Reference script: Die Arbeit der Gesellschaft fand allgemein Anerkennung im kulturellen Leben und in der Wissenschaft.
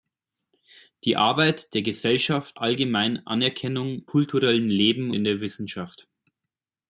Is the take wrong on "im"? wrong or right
wrong